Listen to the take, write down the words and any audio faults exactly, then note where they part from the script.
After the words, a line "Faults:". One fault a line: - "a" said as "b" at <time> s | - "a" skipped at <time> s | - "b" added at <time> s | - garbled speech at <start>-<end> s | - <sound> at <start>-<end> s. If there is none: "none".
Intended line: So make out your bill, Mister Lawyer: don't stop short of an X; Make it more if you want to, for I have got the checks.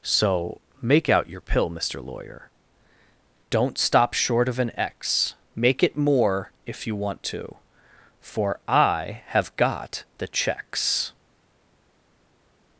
So make out your pill, Mister Lawyer: don't stop short of an X; Make it more if you want to, for I have got the checks.
Faults:
- "bill" said as "pill" at 1.4 s